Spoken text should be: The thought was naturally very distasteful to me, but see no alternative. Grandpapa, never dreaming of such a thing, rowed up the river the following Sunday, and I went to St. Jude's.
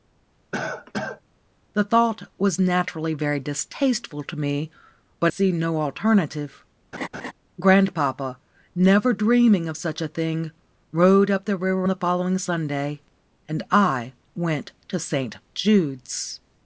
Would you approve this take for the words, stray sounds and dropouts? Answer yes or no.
no